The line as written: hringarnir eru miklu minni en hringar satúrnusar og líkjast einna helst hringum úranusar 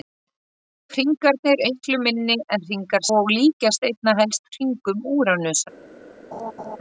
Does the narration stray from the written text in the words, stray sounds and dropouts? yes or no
yes